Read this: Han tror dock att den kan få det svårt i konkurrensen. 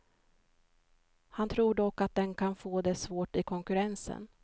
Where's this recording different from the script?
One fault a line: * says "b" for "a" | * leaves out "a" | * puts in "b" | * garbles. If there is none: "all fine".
all fine